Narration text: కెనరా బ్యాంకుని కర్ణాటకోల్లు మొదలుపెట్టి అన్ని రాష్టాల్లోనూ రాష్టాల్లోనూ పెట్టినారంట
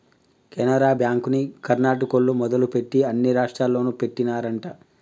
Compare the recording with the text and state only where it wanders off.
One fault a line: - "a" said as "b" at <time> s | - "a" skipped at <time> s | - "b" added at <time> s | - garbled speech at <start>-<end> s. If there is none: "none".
- "రాష్టాల్లోనూ" skipped at 3.9 s